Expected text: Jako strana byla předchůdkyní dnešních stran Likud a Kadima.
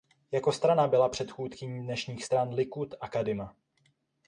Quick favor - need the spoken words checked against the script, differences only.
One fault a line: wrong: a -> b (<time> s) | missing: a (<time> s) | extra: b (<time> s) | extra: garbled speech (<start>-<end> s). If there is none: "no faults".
no faults